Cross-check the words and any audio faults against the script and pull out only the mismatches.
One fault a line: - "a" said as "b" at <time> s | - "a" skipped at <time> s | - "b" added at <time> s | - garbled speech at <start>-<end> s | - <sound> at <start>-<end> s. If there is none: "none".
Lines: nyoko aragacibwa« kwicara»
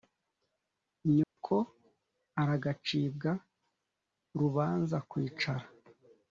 - dropout at 1.2-1.4 s
- "rubanza" added at 4.4 s